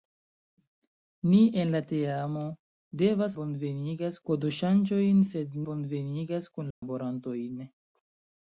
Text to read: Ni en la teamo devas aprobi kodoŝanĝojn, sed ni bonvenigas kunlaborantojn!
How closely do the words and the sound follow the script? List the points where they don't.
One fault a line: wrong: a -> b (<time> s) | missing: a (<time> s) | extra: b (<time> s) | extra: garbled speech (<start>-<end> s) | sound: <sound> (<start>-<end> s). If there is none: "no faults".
wrong: aprobi -> bonvenigas (3.4 s)
missing: ni (5.6 s)
sound: dropout (6.7-6.8 s)